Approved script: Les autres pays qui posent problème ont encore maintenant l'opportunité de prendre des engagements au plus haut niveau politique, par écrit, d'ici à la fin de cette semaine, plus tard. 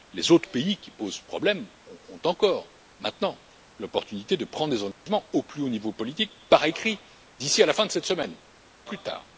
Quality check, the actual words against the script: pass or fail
pass